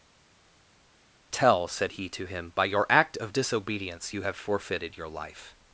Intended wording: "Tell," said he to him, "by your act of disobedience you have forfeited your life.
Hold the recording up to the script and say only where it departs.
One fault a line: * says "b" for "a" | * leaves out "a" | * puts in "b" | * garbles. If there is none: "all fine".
all fine